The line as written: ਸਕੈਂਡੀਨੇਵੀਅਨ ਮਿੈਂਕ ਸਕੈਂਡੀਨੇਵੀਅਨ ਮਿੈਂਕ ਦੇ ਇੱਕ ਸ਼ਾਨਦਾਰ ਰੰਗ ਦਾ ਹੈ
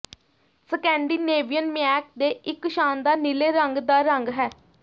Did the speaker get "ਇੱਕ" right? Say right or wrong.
right